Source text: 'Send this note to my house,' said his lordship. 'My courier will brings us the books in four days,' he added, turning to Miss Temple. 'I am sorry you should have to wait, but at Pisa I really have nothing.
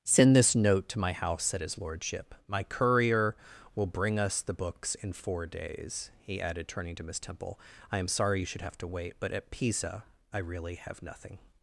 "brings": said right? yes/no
no